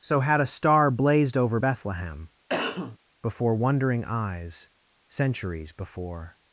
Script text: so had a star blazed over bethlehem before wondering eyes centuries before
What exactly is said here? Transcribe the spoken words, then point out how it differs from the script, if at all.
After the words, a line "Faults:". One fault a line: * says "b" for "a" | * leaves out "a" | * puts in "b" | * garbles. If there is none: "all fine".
so had a star blazed over bethlehem before wondering eyes centuries before
Faults:
all fine